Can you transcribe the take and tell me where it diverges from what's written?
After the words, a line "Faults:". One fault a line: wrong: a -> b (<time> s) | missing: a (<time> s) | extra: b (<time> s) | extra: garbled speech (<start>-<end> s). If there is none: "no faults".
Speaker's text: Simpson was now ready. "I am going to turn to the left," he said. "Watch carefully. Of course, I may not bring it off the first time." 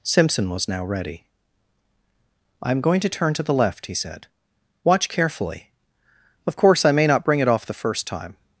Simpson was now ready. "I am going to turn to the left," he said. "Watch carefully. Of course, I may not bring it off the first time."
Faults:
no faults